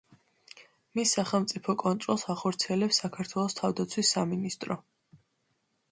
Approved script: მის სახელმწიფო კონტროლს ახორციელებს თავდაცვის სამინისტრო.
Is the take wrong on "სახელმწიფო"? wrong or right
right